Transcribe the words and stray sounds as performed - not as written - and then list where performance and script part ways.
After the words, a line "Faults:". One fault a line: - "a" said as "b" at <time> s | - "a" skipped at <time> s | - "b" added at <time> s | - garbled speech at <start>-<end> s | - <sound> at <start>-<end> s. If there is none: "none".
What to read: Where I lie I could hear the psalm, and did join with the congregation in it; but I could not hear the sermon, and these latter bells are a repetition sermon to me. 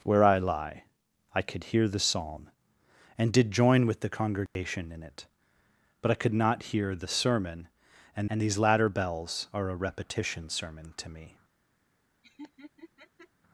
Where I lie I could hear the psalm, and did join with the congregation in it; but I could not hear the sermon, and and these latter bells are a repetition sermon to me.
Faults:
- dropout at 4.5-4.6 s
- "and" added at 8.3 s
- laugh at 12.2-13.3 s